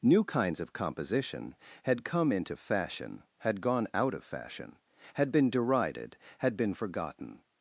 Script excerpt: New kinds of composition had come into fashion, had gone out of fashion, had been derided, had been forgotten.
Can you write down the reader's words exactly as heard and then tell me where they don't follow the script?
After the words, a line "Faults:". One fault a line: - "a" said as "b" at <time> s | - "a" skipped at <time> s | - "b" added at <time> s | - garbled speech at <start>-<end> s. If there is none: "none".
New kinds of composition had come into fashion, had gone out of fashion, had been derided, had been forgotten.
Faults:
none